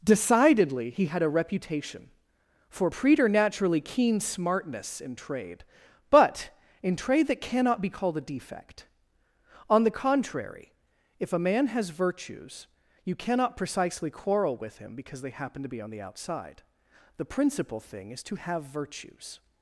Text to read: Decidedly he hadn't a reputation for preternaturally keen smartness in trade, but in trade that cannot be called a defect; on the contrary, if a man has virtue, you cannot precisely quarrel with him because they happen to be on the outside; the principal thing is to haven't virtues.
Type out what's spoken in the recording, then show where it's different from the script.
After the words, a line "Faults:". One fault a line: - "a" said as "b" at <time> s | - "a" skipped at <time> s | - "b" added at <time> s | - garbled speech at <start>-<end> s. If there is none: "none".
Decidedly he had a reputation for preternaturally keen smartness in trade, but in trade that cannot be called a defect; on the contrary, if a man has virtues, you cannot precisely quarrel with him because they happen to be on the outside; the principal thing is to have virtues.
Faults:
- "hadn't" said as "had" at 1.1 s
- "virtue" said as "virtues" at 11.9 s
- "haven't" said as "have" at 18.4 s